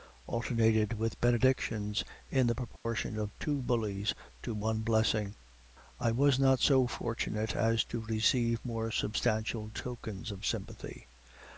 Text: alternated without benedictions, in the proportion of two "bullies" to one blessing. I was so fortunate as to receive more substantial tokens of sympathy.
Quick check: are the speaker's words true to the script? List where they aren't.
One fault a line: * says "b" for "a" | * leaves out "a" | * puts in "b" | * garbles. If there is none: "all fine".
* says "with" for "without"
* puts in "not"